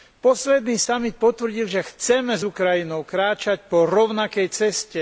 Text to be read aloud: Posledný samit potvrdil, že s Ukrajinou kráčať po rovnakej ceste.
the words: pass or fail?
fail